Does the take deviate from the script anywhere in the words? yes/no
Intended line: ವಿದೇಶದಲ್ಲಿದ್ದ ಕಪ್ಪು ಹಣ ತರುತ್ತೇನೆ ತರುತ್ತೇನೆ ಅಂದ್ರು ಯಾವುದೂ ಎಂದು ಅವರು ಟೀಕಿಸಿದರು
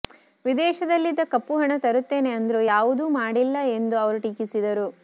yes